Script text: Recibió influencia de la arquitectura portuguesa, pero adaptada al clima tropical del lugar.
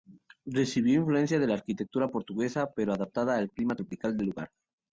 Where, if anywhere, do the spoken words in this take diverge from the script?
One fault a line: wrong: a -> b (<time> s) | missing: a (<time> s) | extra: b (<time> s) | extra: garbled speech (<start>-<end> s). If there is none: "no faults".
no faults